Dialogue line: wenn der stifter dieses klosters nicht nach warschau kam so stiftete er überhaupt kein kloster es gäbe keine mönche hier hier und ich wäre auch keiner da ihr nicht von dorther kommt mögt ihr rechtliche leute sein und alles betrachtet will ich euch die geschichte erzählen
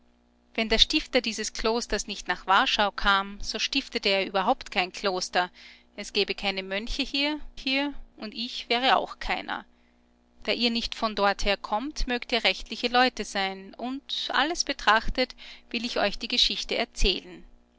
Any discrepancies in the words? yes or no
no